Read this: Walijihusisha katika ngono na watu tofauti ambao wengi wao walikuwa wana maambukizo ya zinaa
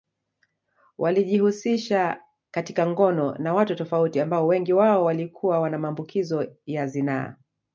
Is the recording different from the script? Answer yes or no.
no